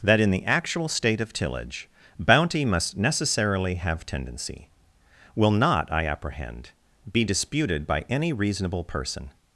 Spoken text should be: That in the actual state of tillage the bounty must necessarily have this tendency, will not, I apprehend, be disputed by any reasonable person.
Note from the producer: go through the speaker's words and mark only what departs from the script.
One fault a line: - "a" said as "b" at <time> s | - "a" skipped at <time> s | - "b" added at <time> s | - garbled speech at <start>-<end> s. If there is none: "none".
- "the" skipped at 1.9 s
- "this" skipped at 4.0 s